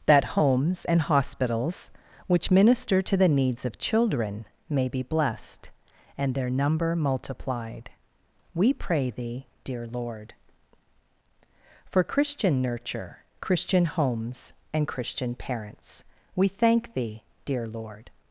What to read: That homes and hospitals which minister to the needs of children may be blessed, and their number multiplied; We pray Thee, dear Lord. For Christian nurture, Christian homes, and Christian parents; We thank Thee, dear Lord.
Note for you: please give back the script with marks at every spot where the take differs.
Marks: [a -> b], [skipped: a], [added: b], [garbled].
That homes and hospitals which minister to the needs of children may be blessed, and their number multiplied; We pray Thee, dear Lord. For Christian nurture, Christian homes, and Christian parents; We thank Thee, dear Lord.